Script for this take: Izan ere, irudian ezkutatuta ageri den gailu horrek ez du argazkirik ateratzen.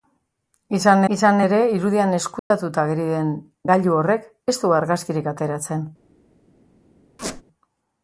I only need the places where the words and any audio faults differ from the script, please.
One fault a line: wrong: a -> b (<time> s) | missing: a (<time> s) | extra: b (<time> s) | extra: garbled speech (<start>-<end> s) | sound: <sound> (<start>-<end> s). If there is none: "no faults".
extra: izan (1.1 s)
sound: dropout (2.4-2.5 s)
sound: squeak (7.2-7.4 s)